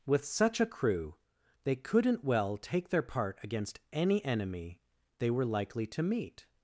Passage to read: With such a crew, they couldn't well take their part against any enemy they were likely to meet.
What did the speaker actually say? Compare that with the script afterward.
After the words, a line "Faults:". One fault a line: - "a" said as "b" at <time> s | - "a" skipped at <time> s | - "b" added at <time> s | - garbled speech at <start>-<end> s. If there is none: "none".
With such a crew, they couldn't well take their part against any enemy they were likely to meet.
Faults:
none